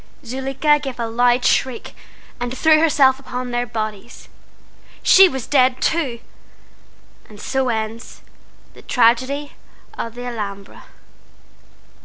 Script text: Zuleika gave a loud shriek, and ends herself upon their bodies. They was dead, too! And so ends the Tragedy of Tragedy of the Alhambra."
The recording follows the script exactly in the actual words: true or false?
false